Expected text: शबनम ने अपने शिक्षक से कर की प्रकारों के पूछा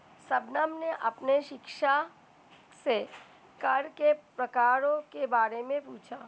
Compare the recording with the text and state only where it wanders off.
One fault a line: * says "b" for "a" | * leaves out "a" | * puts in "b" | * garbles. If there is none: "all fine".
* says "के" for "की"
* puts in "बारे में"